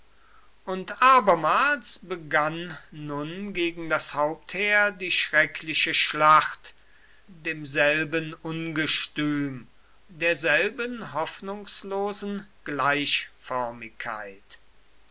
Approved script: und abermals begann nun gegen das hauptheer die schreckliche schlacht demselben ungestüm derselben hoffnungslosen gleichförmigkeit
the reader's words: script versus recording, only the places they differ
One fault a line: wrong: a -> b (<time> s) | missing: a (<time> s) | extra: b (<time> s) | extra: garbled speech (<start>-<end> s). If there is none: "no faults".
no faults